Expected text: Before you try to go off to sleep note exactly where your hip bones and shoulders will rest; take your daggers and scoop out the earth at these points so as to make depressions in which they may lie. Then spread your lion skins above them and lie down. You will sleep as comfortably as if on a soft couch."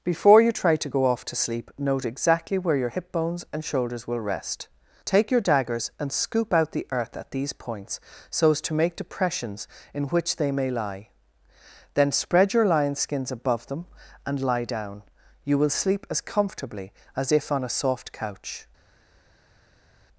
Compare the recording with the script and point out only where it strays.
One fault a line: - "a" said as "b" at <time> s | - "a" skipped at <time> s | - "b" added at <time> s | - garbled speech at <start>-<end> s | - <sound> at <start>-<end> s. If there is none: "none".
none